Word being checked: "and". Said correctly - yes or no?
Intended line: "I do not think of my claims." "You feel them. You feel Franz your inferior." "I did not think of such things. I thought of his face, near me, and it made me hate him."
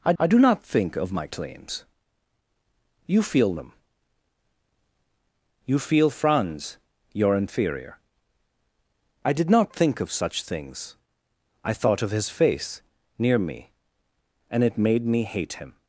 yes